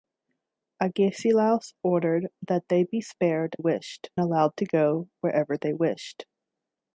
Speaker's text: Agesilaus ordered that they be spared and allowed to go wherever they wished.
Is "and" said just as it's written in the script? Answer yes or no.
no